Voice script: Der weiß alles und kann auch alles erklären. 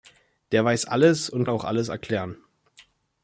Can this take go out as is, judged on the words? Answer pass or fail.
fail